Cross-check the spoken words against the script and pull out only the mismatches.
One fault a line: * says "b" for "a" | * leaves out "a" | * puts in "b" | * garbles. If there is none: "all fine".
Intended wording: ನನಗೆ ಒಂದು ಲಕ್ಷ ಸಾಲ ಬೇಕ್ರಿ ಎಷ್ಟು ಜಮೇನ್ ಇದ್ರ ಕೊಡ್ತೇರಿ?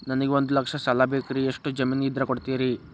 all fine